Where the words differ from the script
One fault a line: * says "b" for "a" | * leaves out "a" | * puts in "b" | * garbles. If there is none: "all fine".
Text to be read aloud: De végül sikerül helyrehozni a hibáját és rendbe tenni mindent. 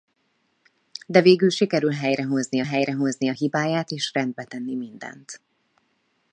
* puts in "helyrehozni"